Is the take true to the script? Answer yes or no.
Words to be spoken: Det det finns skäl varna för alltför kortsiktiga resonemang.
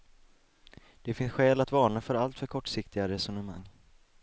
no